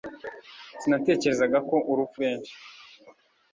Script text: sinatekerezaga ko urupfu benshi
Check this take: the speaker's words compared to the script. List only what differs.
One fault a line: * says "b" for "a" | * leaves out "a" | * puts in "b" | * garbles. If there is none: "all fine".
all fine